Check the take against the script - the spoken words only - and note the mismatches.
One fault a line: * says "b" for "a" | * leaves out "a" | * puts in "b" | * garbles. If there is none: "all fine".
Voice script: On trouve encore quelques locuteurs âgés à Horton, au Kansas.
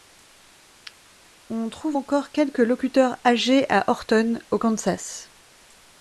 all fine